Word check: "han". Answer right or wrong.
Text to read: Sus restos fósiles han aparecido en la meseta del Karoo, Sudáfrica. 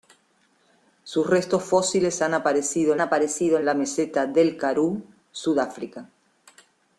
right